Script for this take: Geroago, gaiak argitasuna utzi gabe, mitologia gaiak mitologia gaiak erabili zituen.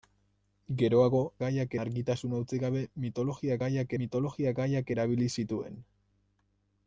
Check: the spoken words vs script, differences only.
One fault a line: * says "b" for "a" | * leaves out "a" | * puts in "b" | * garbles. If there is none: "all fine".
all fine